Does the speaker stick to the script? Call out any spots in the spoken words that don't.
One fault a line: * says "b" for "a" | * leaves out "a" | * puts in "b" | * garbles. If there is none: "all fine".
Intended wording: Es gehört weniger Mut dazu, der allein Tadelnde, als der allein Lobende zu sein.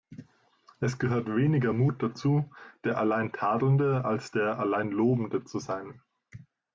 all fine